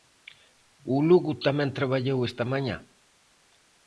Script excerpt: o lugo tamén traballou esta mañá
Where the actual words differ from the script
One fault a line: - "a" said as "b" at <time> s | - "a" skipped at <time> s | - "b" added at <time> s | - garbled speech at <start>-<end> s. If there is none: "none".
none